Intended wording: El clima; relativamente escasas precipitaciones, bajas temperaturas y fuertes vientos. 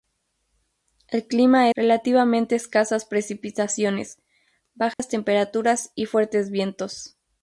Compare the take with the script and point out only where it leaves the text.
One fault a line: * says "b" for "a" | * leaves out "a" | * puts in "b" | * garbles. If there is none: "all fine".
all fine